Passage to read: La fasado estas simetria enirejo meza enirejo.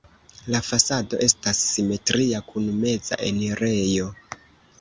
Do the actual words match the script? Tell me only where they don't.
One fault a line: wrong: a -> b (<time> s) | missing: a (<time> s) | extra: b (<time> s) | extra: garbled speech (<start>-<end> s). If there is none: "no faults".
wrong: enirejo -> kun (2.5 s)